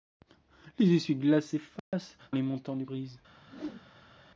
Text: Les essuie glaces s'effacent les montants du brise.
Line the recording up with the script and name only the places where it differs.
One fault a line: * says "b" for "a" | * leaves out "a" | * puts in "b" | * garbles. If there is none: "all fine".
all fine